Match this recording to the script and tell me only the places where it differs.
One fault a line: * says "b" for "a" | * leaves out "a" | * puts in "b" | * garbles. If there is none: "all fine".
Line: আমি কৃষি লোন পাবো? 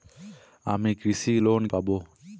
all fine